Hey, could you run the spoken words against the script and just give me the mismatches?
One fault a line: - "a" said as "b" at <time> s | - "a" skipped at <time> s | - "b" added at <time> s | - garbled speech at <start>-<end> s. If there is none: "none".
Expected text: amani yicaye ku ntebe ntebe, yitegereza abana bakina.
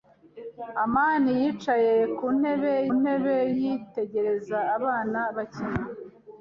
none